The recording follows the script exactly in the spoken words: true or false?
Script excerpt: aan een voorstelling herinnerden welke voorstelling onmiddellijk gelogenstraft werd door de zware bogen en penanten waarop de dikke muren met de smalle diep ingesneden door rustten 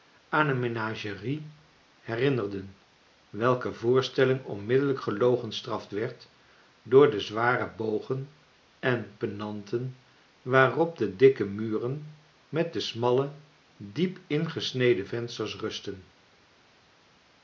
false